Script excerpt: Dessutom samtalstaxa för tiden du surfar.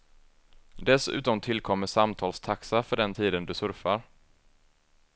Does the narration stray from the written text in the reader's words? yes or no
yes